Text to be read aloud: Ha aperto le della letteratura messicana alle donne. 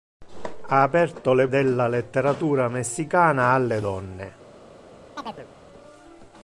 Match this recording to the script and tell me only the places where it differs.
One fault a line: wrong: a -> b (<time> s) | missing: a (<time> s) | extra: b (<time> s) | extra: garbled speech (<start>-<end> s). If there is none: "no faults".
no faults